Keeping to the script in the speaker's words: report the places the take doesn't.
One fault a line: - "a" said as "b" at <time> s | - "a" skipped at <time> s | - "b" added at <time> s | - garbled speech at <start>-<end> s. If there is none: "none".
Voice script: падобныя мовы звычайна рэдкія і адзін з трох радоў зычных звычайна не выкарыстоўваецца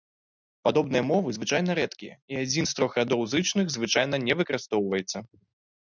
none